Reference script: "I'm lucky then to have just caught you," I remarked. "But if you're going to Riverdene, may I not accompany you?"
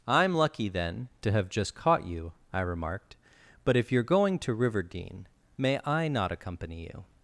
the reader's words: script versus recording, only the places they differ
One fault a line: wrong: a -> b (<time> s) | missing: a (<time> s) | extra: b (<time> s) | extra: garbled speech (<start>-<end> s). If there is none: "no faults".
no faults